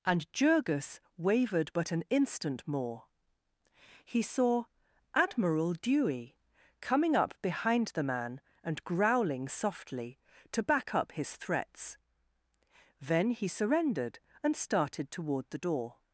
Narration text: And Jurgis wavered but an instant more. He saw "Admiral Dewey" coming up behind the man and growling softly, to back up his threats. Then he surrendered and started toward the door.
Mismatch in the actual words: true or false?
false